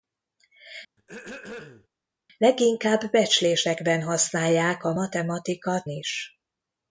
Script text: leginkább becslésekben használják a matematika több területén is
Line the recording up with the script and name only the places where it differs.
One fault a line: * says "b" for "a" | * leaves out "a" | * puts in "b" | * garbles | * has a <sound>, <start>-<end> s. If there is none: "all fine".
* has a throat clearing, 1.0-1.9 s
* leaves out "több területén"